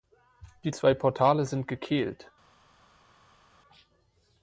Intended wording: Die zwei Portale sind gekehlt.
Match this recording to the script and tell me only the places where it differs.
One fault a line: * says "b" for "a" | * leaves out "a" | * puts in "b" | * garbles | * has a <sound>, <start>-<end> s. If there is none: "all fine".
all fine